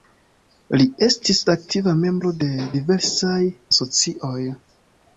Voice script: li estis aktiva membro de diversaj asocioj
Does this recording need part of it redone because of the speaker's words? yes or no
no